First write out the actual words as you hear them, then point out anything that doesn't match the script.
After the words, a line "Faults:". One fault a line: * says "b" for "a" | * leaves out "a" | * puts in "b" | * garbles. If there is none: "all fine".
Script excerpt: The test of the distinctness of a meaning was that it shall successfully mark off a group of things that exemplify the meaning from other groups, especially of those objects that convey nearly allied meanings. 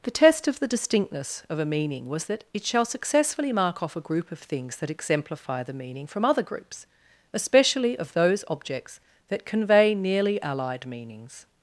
The test of the distinctness of a meaning was that it shall successfully mark off a group of things that exemplify the meaning from other groups, especially of those objects that convey nearly allied meanings.
Faults:
all fine